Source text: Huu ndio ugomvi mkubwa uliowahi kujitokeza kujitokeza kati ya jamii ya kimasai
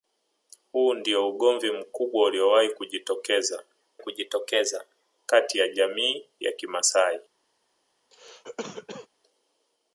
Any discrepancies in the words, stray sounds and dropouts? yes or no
yes